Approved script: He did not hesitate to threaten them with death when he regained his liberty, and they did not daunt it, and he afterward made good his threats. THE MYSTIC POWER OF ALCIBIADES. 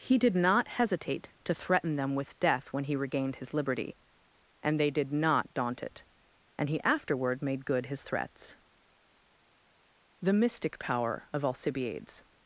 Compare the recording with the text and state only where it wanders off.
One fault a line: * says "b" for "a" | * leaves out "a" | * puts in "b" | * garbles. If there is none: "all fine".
all fine